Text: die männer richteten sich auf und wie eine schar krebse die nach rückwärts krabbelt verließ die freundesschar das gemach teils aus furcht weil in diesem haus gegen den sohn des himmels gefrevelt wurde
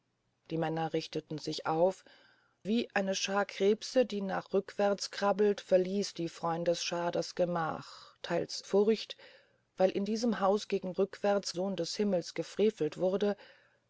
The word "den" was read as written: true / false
false